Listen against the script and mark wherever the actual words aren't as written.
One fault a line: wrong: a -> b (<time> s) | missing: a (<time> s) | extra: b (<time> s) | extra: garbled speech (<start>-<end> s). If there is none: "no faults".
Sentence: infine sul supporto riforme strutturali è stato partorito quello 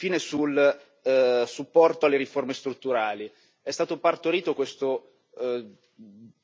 extra: alle (2.0 s)
wrong: quello -> questo (4.5 s)